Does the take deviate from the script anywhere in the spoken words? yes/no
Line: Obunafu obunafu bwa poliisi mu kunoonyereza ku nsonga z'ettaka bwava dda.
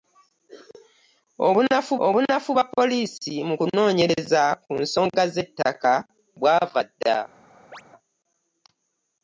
no